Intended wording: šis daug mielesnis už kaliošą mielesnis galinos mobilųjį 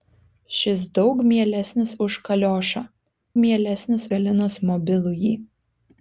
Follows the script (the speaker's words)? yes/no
yes